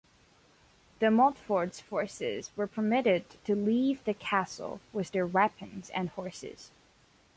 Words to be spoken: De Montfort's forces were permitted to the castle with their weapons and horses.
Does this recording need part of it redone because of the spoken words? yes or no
yes